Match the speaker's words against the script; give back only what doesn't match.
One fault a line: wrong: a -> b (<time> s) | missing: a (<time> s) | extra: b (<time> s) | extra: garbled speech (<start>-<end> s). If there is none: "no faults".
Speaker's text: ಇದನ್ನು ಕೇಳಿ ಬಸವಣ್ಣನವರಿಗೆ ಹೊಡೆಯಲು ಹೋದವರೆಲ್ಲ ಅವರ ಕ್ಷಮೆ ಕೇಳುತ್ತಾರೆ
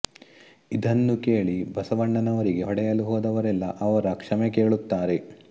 no faults